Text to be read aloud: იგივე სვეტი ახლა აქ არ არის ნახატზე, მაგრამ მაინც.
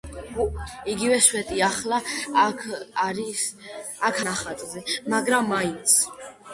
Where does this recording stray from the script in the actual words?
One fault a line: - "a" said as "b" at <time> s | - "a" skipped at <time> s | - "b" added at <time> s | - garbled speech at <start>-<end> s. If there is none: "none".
- "არ არის" skipped at 2.6 s